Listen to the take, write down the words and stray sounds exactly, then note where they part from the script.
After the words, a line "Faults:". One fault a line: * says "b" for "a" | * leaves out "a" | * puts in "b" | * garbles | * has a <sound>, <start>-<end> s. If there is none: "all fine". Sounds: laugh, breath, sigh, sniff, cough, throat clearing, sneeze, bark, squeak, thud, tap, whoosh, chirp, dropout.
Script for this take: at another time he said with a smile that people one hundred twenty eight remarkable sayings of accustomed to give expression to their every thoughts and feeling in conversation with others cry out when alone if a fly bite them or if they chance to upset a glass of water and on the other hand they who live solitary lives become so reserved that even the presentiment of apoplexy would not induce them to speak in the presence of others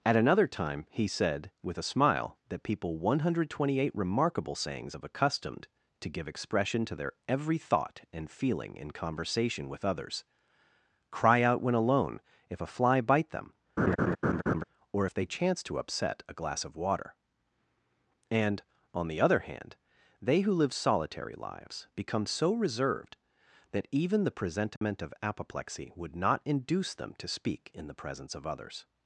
at another time he said with a smile that people one hundred twenty eight remarkable sayings of accustomed to give expression to their every thought and feeling in conversation with others cry out when alone if a fly bite them or if they chance to upset a glass of water and on the other hand they who live solitary lives become so reserved that even the presentiment of apoplexy would not induce them to speak in the presence of others
Faults:
* says "thought" for "thoughts"
* has a laugh, 13.8-14.6 s
* has a dropout, 24.8-24.8 s